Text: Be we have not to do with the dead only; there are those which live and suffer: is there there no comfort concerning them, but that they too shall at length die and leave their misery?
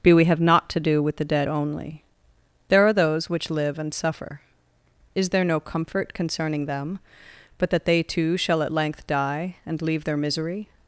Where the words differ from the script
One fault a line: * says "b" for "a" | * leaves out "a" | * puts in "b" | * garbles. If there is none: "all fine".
* leaves out "there"